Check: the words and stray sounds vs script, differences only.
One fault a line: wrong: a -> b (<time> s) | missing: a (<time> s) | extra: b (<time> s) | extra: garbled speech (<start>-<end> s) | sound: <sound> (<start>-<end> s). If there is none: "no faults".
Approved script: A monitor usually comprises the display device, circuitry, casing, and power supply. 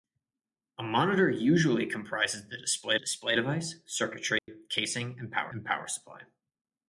extra: display (3.0 s)
sound: dropout (4.4-4.5 s)
extra: and power (5.5 s)